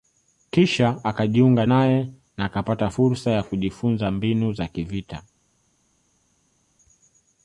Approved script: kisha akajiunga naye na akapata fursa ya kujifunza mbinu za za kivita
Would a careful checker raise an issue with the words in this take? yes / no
yes